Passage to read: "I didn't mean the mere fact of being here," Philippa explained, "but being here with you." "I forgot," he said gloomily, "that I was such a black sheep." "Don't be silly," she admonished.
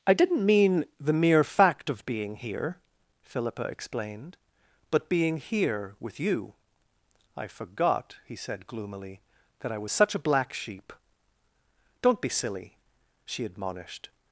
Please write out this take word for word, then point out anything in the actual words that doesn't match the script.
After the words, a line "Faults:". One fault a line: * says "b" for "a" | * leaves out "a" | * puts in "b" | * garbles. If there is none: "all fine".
"I didn't mean the mere fact of being here," Philippa explained, "but being here with you." "I forgot," he said gloomily, "that I was such a black sheep." "Don't be silly," she admonished.
Faults:
all fine